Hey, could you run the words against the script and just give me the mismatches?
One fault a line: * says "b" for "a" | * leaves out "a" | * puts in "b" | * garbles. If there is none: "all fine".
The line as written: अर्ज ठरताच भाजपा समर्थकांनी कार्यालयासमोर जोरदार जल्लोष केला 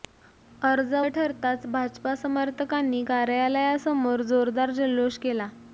all fine